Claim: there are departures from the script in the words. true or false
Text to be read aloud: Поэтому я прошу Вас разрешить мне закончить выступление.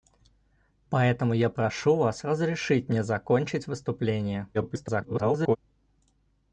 true